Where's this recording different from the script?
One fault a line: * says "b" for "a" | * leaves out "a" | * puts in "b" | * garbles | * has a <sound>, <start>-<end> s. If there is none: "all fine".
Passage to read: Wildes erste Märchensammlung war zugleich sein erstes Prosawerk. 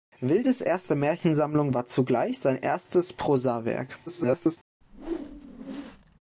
* garbles
* has a whoosh, 4.8-6.2 s